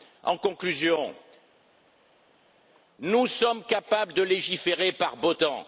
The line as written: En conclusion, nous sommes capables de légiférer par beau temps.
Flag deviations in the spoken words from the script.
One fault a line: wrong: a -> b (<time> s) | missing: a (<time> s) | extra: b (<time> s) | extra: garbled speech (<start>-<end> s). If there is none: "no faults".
no faults